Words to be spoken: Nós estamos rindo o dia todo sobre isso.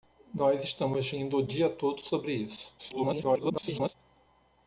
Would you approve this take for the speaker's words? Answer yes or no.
no